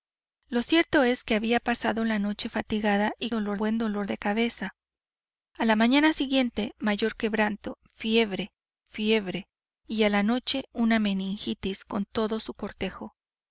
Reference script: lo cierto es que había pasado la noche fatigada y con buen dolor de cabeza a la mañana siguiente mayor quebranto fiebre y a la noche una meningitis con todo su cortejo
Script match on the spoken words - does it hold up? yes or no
no